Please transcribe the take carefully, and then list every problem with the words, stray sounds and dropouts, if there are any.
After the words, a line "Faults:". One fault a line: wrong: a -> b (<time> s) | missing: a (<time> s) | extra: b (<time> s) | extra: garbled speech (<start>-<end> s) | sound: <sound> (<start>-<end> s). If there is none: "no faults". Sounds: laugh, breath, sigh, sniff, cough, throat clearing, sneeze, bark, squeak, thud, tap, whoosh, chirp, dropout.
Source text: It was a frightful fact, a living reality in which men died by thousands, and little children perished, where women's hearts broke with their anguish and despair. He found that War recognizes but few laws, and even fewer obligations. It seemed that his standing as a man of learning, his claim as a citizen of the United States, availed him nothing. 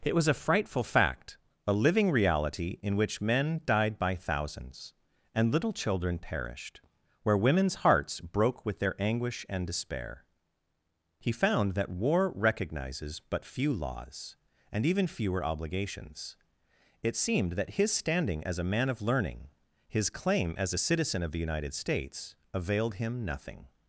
It was a frightful fact, a living reality in which men died by thousands, and little children perished, where women's hearts broke with their anguish and despair. He found that War recognizes but few laws, and even fewer obligations. It seemed that his standing as a man of learning, his claim as a citizen of the United States, availed him nothing.
Faults:
no faults